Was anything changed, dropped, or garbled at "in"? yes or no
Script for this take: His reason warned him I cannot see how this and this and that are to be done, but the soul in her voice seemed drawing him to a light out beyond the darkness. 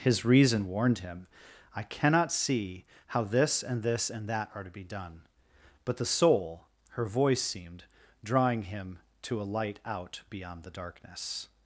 yes